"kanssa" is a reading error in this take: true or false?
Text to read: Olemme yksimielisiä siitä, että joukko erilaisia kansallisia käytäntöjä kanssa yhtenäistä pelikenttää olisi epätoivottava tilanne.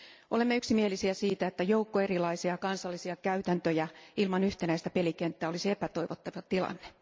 true